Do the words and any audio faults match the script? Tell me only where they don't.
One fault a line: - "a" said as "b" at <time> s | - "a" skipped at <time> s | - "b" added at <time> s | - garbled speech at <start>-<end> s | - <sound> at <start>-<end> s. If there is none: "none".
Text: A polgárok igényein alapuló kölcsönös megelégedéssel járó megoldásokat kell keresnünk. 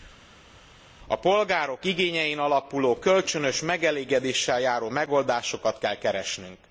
none